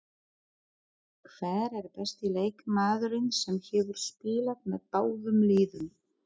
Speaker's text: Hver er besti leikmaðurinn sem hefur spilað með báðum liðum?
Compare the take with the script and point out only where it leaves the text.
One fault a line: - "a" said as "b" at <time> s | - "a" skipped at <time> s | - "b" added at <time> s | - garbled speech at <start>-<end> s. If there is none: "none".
none